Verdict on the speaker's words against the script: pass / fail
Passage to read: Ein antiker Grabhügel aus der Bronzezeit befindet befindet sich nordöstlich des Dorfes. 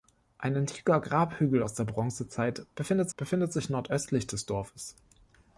pass